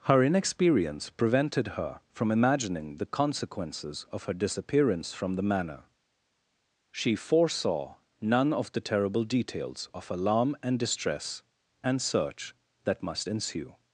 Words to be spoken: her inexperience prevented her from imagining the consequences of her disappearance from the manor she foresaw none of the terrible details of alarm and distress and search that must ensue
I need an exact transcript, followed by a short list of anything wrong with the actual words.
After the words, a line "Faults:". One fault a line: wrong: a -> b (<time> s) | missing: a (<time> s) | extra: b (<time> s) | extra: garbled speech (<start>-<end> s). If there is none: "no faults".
her inexperience prevented her from imagining the consequences of her disappearance from the manor she foresaw none of the terrible details of alarm and distress and search that must ensue
Faults:
no faults